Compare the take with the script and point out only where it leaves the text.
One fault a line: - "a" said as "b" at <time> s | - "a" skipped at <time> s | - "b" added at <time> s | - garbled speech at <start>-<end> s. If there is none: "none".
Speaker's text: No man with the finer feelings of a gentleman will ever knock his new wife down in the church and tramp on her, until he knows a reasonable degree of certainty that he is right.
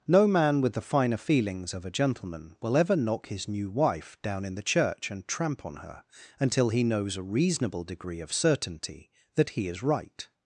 none